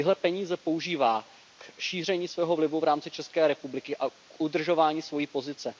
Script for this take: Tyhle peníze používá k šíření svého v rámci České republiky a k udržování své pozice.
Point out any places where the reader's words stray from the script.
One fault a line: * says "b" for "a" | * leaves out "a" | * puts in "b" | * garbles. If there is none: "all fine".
* puts in "vlivu"